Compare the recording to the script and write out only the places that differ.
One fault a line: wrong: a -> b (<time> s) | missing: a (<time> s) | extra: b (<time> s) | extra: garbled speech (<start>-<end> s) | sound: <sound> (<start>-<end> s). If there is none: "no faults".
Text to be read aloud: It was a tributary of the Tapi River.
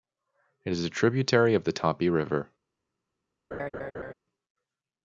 wrong: was -> is (0.7 s)
sound: laugh (3.5-4.1 s)